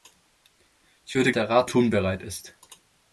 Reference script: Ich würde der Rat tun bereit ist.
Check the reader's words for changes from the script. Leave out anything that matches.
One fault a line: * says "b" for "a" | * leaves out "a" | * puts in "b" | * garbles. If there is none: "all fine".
all fine